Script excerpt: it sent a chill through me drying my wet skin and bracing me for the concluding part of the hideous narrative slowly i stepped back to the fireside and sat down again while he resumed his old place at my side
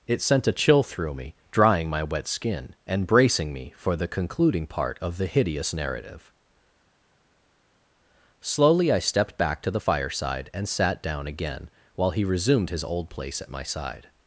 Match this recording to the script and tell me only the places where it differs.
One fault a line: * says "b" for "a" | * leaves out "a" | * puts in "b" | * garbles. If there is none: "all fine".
all fine